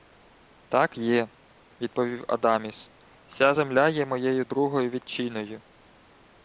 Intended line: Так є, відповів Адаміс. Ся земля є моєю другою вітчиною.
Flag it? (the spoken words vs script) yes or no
no